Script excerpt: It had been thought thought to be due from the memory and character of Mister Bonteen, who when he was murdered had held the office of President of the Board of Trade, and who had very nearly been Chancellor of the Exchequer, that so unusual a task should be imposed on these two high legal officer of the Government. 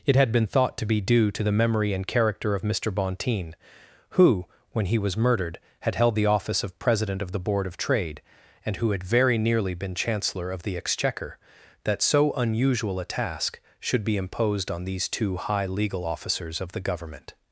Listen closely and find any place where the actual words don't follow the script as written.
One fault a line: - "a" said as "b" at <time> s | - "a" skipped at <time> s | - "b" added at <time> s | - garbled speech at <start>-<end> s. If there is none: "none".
- "thought" skipped at 0.8 s
- "from" said as "to" at 1.3 s
- "officer" said as "officers" at 16.0 s